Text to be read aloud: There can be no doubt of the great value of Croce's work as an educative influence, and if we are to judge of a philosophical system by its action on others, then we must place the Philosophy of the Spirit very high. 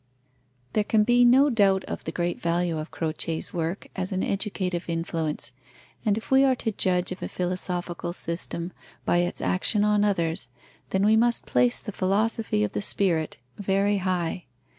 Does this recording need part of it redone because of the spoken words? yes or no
no